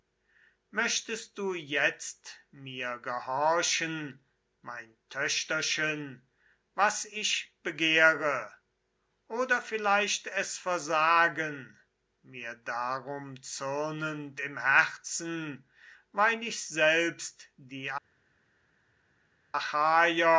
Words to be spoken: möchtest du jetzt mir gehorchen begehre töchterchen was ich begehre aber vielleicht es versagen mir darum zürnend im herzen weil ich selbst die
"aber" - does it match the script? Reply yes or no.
no